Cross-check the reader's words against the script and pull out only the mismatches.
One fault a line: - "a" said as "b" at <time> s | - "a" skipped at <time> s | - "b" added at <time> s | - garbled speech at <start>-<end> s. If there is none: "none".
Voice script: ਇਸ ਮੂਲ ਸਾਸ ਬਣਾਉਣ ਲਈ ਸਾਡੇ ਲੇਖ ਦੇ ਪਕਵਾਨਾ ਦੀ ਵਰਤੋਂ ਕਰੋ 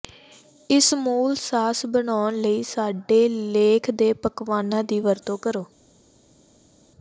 none